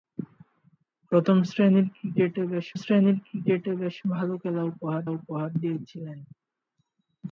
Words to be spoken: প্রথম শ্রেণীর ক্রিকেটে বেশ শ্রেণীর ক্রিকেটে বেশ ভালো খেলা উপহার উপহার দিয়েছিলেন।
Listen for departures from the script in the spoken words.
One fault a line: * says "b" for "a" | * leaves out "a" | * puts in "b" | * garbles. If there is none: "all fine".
all fine